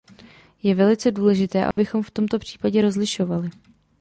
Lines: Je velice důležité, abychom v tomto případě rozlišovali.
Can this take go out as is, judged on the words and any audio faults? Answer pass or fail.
fail